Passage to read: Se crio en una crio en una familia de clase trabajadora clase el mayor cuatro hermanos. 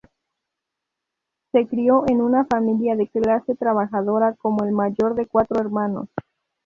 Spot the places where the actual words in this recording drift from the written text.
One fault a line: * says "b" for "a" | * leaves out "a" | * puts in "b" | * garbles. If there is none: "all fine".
* leaves out "crio en una"
* says "como" for "clase"
* puts in "de"